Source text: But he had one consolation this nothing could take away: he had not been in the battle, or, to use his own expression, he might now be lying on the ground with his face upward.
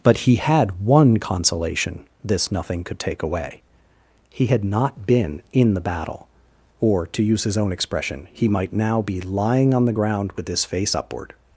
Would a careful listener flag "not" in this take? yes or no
no